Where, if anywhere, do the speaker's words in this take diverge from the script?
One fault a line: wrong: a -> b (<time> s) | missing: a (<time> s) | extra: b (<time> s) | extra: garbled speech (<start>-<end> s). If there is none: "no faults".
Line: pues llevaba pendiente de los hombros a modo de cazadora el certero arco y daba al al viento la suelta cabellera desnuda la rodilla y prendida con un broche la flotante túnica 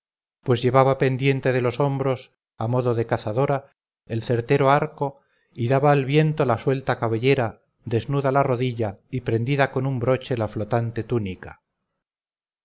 missing: al (6.0 s)